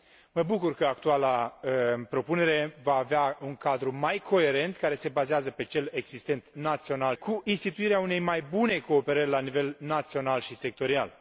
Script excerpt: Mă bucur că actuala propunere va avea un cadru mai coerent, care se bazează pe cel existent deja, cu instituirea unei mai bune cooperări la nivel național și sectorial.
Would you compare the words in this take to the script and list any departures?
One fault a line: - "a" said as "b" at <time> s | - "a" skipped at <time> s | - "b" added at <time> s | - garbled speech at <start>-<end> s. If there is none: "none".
- "deja" said as "național" at 6.5 s